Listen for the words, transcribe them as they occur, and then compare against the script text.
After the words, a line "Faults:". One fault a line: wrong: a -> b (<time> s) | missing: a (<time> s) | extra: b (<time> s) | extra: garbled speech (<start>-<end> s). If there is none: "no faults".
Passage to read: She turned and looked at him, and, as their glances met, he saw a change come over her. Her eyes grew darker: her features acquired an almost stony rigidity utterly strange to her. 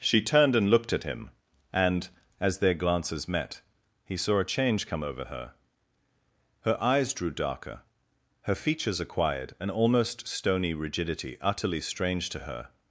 She turned and looked at him, and, as their glances met, he saw a change come over her. Her eyes drew darker: her features acquired an almost stony rigidity utterly strange to her.
Faults:
wrong: grew -> drew (7.1 s)